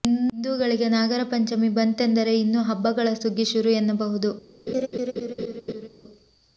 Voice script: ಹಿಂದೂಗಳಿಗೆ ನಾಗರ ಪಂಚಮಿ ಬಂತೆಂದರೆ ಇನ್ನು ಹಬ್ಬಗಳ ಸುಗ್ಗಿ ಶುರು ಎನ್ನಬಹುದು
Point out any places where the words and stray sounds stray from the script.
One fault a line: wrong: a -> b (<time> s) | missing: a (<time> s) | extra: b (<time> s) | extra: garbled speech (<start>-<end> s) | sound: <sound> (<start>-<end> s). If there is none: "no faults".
sound: laugh (4.7-5.9 s)